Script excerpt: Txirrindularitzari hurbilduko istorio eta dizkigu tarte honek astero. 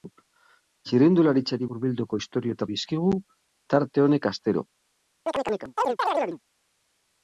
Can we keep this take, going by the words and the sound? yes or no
no